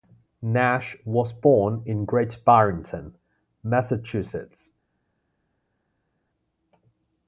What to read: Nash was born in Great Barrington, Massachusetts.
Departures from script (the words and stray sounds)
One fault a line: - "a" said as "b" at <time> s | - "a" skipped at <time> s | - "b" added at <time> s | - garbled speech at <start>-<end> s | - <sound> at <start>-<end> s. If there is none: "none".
none